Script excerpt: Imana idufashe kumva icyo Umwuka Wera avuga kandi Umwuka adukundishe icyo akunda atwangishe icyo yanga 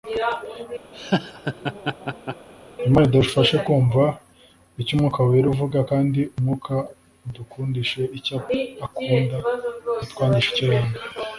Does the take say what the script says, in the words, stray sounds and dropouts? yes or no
no